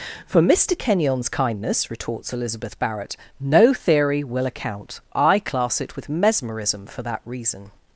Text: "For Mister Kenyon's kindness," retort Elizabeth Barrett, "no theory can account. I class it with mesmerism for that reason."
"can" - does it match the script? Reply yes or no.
no